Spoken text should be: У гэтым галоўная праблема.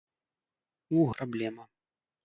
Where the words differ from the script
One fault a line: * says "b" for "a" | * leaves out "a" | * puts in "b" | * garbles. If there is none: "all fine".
* leaves out "гэтым галоўная"